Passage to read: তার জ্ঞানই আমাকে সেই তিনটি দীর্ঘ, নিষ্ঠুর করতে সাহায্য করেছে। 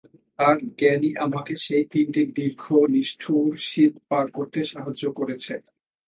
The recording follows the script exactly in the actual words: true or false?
false